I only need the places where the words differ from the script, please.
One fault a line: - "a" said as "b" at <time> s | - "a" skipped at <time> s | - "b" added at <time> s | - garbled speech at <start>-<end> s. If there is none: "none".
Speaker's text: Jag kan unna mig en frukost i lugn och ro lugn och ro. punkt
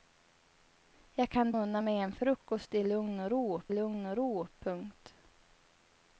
none